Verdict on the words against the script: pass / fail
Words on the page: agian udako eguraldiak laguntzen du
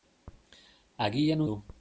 fail